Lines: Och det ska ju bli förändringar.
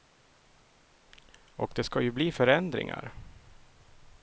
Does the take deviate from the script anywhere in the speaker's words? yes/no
no